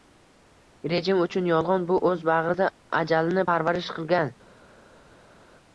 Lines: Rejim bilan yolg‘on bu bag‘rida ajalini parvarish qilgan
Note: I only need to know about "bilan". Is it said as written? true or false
false